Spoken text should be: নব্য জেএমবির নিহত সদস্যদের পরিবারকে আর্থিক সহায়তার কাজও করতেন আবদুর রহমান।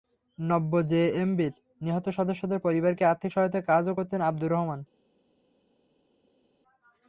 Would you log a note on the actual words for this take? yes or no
no